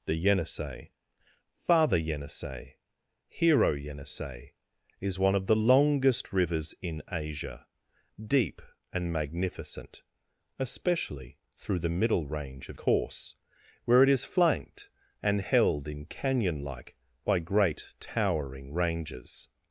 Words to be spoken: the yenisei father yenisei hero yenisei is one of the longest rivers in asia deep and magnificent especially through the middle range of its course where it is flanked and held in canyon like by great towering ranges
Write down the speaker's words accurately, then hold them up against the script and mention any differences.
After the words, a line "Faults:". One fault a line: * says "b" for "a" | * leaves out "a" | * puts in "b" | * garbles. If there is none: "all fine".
the yenisei father yenisei hero yenisei is one of the longest rivers in asia deep and magnificent especially through the middle range of course where it is flanked and held in canyon like by great towering ranges
Faults:
* leaves out "its"